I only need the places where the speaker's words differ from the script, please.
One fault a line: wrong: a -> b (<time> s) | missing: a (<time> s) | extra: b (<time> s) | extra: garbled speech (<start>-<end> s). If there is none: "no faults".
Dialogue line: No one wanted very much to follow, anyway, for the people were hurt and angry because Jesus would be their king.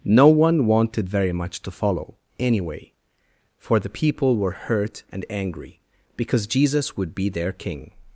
no faults